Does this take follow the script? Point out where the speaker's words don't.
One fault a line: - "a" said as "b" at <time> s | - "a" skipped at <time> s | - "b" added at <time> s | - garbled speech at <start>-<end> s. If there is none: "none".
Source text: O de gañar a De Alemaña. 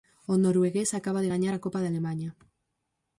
- "noruegués acaba" added at 0.4 s
- "Copa" added at 1.6 s